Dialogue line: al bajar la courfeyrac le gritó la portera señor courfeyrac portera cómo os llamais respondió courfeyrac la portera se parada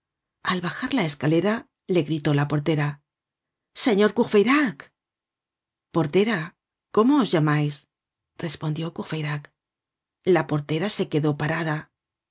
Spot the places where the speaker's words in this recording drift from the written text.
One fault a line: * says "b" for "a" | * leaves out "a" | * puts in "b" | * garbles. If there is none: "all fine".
* says "escalera" for "courfeyrac"
* puts in "quedó"